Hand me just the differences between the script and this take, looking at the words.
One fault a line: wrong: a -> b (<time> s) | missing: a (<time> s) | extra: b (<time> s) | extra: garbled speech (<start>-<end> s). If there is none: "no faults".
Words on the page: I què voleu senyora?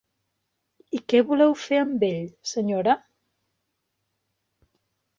extra: fer amb ell (1.6 s)